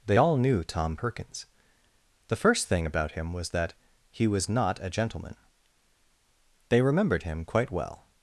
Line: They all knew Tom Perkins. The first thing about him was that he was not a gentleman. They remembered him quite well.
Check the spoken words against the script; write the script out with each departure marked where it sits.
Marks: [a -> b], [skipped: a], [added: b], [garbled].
They all knew Tom Perkins. The first thing about him was that he was not a gentleman. They remembered him quite well.